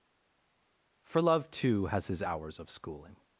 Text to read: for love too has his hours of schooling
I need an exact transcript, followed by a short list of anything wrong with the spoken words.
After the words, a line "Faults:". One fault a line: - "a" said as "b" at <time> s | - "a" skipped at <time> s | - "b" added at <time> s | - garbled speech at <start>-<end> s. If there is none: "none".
for love too has his hours of schooling
Faults:
none